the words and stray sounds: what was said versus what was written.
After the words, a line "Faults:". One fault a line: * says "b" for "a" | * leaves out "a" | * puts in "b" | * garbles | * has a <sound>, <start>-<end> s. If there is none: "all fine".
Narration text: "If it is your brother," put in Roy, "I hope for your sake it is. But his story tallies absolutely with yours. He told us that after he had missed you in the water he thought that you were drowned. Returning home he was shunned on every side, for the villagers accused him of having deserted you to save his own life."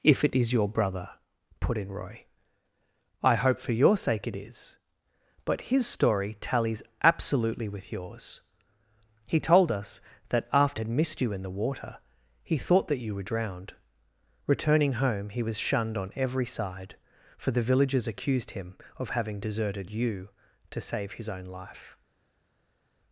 "If it is your brother," put in Roy, "I hope for your sake it is. But his story tallies absolutely with yours. He told us that after had missed you in the water he thought that you were drowned. Returning home he was shunned on every side, for the villagers accused him of having deserted you to save his own life."
Faults:
* leaves out "he"